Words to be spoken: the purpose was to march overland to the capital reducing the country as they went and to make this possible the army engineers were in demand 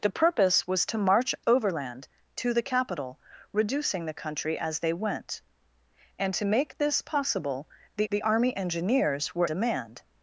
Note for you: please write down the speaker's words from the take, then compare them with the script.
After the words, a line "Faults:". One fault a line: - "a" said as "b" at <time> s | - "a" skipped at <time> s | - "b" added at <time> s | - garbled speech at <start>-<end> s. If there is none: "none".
the purpose was to march overland to the capital reducing the country as they went and to make this possible the the army engineers were demand
Faults:
- "the" added at 8.1 s
- "in" skipped at 9.5 s